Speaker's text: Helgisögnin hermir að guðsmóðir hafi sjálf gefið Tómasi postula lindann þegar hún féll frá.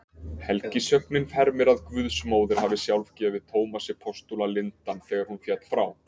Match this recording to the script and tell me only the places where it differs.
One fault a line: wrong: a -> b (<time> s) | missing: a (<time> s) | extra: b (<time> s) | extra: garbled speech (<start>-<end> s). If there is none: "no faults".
no faults